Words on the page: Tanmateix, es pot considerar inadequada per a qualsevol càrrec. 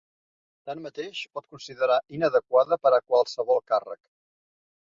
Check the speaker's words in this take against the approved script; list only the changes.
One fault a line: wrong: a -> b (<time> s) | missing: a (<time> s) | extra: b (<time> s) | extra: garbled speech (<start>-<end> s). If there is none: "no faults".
no faults